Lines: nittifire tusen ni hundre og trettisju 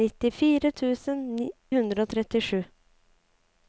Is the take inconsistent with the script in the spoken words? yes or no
yes